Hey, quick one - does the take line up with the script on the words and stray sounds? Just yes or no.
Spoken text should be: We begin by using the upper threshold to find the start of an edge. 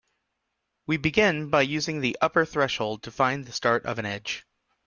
yes